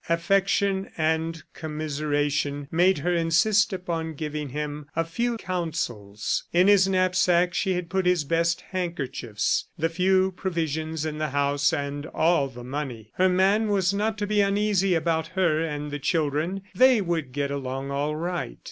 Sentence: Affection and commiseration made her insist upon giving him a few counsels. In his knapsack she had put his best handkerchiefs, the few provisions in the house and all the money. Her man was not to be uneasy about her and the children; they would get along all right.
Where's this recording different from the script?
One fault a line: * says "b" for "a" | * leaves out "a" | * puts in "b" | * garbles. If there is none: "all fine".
all fine